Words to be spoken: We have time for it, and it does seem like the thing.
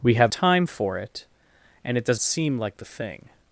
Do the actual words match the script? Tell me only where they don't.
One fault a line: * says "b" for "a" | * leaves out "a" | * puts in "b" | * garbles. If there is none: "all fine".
all fine